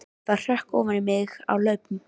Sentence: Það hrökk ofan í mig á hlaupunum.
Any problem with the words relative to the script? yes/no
no